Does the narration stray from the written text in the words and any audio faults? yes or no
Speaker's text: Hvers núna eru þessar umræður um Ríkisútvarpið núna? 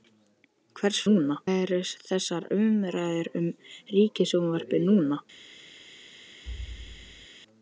yes